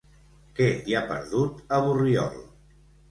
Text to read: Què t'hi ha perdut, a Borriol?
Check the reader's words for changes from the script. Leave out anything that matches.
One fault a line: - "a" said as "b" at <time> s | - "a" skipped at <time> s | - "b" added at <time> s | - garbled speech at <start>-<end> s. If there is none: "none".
none